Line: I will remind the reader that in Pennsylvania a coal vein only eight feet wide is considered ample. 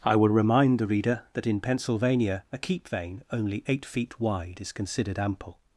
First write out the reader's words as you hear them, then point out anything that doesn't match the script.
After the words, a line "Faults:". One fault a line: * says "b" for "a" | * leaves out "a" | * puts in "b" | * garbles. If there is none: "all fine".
I will remind the reader that in Pennsylvania a keep vein only eight feet wide is considered ample.
Faults:
* says "keep" for "coal"